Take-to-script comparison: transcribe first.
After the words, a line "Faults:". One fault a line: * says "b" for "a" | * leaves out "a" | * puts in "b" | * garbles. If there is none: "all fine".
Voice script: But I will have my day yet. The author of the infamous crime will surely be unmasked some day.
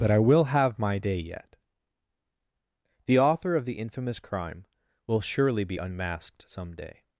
But I will have my day yet. The author of the infamous crime will surely be unmasked some day.
Faults:
all fine